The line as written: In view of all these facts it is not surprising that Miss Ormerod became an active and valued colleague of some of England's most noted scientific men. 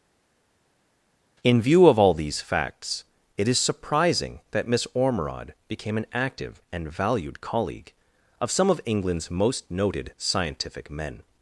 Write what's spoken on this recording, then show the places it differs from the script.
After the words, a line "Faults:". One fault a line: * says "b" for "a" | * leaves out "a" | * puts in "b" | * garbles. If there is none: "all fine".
In view of all these facts it is surprising that Miss Ormerod became an active and valued colleague of some of England's most noted scientific men.
Faults:
* leaves out "not"